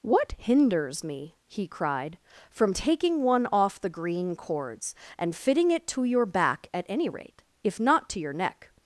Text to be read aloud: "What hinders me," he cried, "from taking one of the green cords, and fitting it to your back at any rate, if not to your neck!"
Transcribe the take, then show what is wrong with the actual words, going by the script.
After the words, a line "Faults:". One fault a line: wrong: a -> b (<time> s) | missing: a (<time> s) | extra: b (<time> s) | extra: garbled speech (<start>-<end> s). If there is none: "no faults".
"What hinders me," he cried, "from taking one off the green cords, and fitting it to your back at any rate, if not to your neck!"
Faults:
wrong: of -> off (3.5 s)